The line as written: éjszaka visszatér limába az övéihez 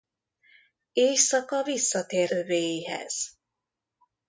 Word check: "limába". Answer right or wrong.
wrong